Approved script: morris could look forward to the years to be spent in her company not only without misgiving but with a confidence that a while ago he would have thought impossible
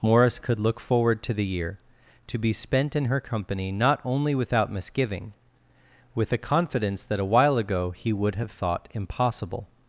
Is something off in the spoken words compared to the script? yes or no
yes